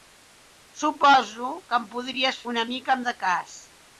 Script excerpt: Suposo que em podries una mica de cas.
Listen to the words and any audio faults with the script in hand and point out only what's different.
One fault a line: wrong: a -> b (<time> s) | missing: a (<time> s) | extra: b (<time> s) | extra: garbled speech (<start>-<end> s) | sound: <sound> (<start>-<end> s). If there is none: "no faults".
no faults